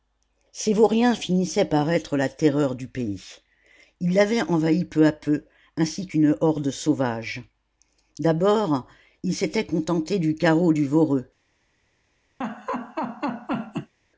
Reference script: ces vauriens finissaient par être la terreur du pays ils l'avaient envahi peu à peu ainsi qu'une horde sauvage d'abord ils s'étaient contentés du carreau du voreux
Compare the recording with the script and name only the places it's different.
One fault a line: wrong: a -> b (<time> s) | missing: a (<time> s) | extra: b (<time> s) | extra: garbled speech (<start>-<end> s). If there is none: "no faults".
no faults